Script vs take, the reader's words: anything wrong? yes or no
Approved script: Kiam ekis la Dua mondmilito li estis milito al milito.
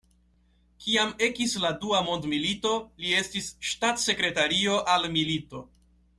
yes